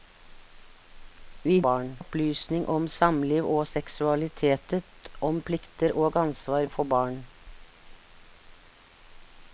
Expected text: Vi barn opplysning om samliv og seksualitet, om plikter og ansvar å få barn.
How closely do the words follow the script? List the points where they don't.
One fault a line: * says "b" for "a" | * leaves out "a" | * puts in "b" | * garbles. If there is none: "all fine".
all fine